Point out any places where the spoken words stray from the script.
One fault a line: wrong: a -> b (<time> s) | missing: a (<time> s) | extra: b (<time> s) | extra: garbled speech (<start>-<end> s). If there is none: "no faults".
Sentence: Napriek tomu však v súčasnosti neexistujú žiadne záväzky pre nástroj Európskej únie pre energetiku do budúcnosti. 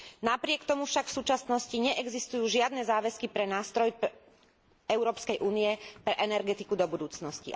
no faults